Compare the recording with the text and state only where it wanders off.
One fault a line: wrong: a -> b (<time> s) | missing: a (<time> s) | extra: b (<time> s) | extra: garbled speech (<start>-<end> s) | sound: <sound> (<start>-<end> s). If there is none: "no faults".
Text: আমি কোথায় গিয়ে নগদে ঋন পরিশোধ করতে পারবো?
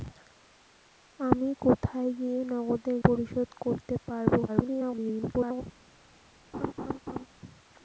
missing: ঋন (2.9 s)
extra: garbled speech (4.5-5.6 s)
sound: laugh (6.5-7.3 s)